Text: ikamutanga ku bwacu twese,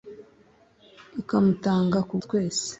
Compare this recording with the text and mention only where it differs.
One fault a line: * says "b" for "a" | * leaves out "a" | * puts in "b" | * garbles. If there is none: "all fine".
* leaves out "bwacu"